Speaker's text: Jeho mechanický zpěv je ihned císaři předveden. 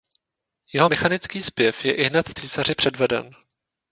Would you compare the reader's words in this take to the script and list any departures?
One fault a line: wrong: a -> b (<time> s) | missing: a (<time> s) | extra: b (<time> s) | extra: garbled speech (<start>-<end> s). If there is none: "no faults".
no faults